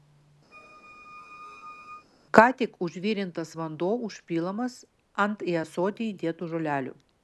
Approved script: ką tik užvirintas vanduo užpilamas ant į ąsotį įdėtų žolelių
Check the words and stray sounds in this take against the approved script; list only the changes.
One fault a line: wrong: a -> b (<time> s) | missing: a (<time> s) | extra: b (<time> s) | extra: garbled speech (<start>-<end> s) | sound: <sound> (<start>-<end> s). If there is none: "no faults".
sound: squeak (0.5-2.1 s)